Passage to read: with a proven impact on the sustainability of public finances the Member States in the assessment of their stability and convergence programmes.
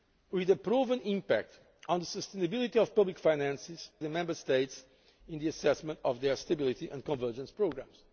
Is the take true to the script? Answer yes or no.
yes